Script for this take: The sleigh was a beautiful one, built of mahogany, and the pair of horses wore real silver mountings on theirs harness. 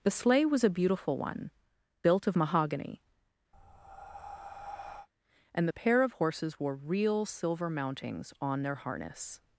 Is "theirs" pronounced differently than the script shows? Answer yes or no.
yes